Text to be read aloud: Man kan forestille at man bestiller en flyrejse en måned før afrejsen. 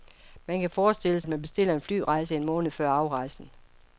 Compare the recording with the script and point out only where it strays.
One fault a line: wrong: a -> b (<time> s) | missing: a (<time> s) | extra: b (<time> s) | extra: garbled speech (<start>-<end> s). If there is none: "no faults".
no faults